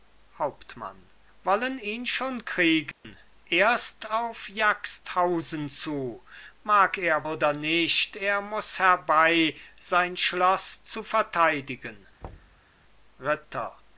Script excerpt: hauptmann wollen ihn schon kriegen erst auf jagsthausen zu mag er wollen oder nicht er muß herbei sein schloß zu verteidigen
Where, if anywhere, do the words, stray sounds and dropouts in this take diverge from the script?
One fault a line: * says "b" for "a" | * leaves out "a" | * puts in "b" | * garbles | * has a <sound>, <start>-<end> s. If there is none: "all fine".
* has a dropout, 2.9-3.0 s
* leaves out "wollen"
* has a thud, 12.2-12.7 s